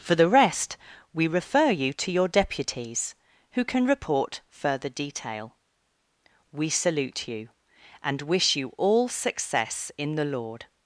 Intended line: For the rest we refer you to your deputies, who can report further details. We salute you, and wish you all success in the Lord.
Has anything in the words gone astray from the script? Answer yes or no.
yes